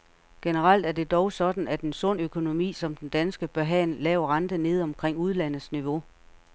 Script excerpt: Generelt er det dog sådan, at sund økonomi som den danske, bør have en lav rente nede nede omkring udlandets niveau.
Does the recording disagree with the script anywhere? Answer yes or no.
yes